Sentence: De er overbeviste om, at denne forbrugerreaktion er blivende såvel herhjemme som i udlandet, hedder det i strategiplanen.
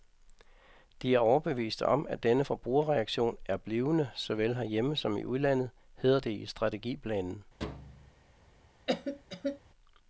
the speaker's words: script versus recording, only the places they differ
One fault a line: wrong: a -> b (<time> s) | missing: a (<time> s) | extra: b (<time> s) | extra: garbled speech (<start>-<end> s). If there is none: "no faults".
no faults